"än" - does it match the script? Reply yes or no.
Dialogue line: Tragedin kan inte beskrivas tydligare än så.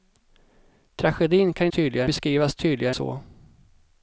no